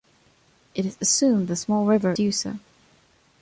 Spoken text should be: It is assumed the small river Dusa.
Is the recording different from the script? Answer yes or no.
no